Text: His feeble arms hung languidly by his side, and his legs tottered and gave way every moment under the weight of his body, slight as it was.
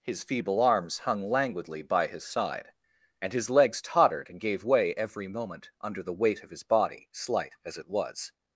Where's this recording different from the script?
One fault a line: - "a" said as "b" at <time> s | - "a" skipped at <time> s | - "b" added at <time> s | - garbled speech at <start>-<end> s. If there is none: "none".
none